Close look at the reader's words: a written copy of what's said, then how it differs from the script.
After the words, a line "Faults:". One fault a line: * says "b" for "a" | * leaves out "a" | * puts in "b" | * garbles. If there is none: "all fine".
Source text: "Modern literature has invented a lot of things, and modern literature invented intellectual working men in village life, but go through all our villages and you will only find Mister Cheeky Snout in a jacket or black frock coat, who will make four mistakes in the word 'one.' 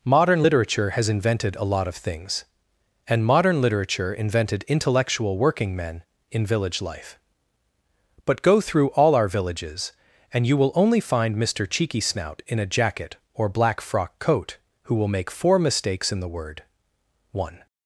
"Modern literature has invented a lot of things, and modern literature invented intellectual working men in village life, but go through all our villages and you will only find Mister Cheeky Snout in a jacket or black frock coat, who will make four mistakes in the word 'one.'
Faults:
all fine